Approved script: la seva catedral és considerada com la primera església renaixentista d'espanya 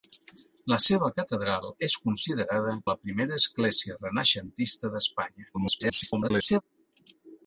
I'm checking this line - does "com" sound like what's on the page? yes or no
no